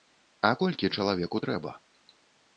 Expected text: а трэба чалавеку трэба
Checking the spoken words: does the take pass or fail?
fail